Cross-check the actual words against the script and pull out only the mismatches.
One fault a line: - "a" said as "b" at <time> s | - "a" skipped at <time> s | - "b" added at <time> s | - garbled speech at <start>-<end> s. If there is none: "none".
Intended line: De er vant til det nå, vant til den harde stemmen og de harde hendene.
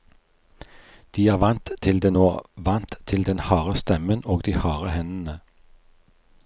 none